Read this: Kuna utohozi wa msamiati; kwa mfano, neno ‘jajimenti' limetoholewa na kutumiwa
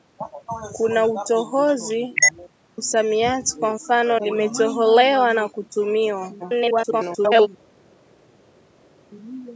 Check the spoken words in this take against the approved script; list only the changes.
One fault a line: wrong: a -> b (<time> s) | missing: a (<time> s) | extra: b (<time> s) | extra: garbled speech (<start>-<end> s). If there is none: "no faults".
missing: wa (2.1 s)
missing: neno jajimenti (4.2 s)
extra: garbled speech (6.4-7.5 s)